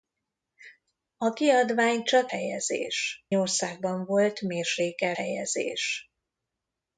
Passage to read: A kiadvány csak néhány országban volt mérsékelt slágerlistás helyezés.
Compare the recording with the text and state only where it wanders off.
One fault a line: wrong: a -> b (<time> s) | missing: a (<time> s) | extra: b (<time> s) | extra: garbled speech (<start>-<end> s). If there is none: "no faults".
wrong: néhány -> helyezés (2.3 s)
missing: slágerlistás (5.2 s)